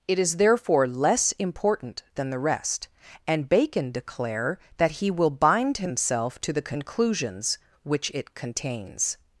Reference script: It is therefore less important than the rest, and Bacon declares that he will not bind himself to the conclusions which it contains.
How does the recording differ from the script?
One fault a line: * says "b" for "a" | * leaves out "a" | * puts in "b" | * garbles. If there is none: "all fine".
* says "declare" for "declares"
* leaves out "not"